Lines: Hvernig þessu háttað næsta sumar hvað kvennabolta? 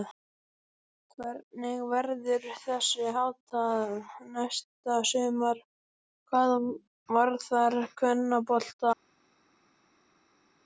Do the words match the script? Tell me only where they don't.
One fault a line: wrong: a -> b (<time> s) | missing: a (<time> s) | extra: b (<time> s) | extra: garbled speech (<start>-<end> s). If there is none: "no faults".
extra: verður (1.9 s)
extra: varðar (7.2 s)